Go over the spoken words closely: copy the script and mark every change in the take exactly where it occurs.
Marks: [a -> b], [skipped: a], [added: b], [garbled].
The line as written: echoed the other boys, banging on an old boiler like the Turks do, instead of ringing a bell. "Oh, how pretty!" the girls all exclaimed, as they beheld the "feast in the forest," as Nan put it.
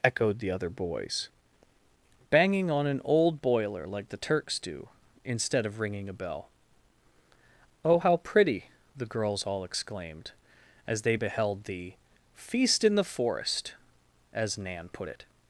echoed the other boys, banging on an old boiler like the Turks do, instead of ringing a bell. "Oh, how pretty!" the girls all exclaimed, as they beheld the "feast in the forest," as Nan put it.